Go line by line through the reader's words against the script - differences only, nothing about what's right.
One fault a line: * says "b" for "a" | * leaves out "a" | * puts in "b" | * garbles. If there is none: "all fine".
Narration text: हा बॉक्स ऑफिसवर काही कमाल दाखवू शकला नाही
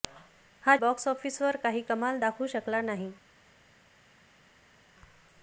all fine